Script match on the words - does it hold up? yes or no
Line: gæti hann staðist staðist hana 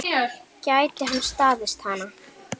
no